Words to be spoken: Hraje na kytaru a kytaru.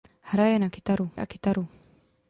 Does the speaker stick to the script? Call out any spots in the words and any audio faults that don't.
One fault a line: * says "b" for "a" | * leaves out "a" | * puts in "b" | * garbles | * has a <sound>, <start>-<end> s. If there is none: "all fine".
all fine